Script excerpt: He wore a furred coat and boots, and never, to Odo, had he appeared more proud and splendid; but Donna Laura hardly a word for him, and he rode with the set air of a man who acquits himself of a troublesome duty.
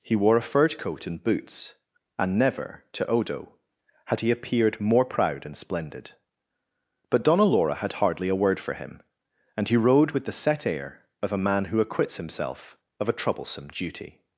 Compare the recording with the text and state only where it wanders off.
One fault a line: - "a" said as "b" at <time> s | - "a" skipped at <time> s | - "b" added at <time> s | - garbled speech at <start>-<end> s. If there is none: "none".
- "had" added at 7.8 s